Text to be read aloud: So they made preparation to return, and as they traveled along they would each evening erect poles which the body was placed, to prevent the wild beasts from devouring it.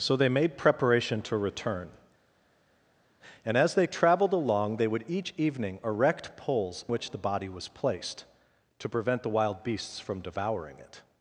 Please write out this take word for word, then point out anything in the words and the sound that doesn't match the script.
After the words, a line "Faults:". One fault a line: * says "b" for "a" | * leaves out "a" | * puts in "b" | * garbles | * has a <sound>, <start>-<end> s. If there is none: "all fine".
So they made preparation to return, and as they traveled along they would each evening erect poles which the body was placed, to prevent the wild beasts from devouring it.
Faults:
all fine